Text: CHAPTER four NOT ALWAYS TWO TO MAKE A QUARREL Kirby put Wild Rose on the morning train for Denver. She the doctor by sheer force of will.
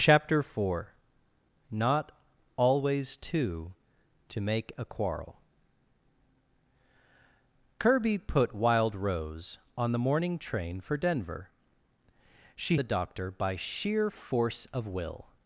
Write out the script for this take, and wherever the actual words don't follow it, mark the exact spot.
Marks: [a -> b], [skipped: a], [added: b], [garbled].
CHAPTER four NOT ALWAYS TWO TO MAKE A QUARREL Kirby put Wild Rose on the morning train for Denver. She the doctor by sheer force of will.